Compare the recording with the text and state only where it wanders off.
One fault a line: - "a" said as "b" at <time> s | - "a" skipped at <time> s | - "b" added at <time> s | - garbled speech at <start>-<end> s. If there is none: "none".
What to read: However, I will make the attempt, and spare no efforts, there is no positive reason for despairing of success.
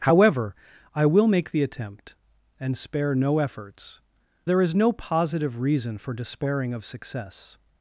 none